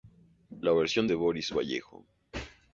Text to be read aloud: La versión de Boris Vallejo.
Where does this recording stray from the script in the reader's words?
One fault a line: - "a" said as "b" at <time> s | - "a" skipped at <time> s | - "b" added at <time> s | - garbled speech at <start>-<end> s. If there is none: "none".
none